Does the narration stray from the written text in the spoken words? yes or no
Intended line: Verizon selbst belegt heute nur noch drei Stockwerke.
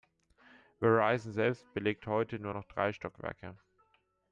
no